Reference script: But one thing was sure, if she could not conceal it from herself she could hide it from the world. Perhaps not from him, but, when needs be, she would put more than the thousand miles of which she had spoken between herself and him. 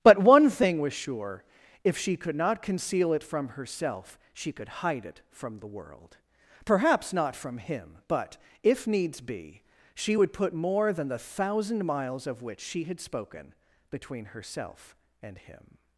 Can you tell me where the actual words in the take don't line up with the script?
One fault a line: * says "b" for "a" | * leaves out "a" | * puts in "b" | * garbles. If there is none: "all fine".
* says "if" for "when"